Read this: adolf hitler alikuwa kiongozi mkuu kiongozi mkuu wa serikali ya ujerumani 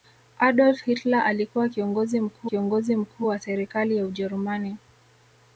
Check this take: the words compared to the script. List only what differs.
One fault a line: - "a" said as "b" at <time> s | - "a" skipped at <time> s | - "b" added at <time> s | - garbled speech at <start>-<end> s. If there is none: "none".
none